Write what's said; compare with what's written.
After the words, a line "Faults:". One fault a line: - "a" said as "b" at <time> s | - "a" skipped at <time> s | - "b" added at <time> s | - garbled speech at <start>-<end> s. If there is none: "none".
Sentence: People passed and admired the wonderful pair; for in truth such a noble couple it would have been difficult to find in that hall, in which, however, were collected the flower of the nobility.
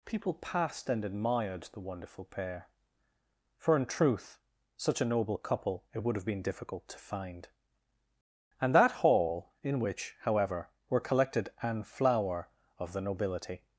People passed and admired the wonderful pair; for in truth such a noble couple it would have been difficult to find and that hall, in which, however, were collected an flower of the nobility.
Faults:
- "in" said as "and" at 8.6 s
- "the" said as "an" at 11.6 s